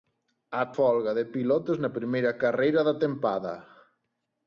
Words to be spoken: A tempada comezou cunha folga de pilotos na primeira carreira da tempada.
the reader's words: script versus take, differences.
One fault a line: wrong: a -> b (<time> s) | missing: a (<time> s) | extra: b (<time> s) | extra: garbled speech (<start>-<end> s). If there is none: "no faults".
missing: tempada comezou cunha (0.6 s)